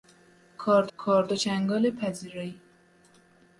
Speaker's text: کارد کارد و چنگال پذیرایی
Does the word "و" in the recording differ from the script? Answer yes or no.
no